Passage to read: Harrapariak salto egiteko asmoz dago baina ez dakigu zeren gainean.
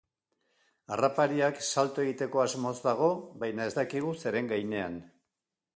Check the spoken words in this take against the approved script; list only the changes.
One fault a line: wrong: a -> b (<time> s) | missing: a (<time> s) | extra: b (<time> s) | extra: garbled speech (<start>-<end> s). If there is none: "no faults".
no faults